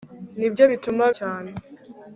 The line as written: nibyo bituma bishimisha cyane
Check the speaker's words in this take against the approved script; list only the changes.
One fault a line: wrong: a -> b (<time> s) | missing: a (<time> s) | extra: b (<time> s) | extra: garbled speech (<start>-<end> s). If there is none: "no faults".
missing: bishimisha (1.0 s)